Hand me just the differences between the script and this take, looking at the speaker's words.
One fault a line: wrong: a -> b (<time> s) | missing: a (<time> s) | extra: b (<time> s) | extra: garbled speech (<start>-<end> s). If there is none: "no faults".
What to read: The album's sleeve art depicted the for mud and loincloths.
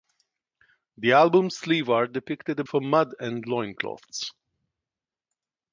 no faults